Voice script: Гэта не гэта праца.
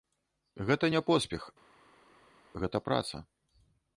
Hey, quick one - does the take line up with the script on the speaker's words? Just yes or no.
no